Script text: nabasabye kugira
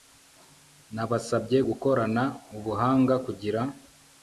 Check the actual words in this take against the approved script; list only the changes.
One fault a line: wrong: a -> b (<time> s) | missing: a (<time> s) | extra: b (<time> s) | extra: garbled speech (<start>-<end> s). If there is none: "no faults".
extra: gukorana ubuhanga (1.7 s)